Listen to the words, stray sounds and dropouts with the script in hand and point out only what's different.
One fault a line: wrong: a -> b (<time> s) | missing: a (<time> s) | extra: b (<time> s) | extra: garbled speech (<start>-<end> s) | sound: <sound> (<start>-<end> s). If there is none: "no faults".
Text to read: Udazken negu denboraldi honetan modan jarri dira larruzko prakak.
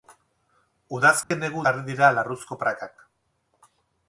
sound: dropout (1.2-1.3 s)
missing: denboraldi honetan modan (1.6 s)